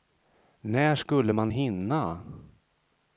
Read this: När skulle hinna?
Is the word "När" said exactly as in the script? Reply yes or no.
yes